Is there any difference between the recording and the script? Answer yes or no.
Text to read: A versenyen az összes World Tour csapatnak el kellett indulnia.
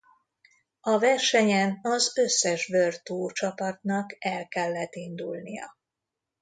no